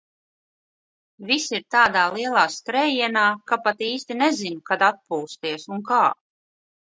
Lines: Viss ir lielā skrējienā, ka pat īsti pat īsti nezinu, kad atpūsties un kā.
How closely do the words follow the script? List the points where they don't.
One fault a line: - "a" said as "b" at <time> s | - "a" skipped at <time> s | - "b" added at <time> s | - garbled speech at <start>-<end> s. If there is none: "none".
- "tādā" added at 1.8 s
- "pat īsti" skipped at 4.2 s